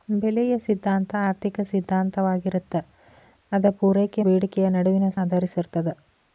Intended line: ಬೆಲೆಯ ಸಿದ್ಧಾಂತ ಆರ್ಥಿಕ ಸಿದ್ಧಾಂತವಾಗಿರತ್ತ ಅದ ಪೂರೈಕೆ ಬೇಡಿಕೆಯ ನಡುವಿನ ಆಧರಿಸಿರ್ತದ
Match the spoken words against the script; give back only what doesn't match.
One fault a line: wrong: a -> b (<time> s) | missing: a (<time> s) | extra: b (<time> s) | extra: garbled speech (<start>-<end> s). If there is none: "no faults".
no faults